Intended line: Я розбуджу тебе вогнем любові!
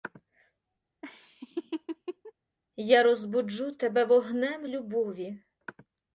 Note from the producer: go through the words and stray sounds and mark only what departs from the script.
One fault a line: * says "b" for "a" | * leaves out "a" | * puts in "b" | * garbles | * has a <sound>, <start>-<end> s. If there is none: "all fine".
* has a laugh, 1.0-2.3 s